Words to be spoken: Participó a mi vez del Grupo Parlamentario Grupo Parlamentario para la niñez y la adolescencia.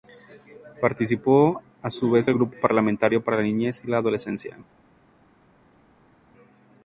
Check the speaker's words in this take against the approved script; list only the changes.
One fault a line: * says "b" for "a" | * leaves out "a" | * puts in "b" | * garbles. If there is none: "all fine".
* says "su" for "mi"
* leaves out "Grupo Parlamentario"